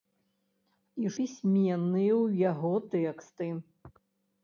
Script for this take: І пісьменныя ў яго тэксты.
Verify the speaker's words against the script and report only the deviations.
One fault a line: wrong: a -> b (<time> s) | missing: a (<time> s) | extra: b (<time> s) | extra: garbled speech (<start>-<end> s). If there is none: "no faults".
no faults